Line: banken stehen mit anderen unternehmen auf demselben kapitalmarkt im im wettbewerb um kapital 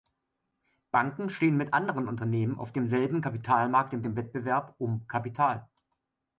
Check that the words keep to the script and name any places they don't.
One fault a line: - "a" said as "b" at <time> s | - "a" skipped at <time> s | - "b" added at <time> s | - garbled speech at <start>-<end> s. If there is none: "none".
none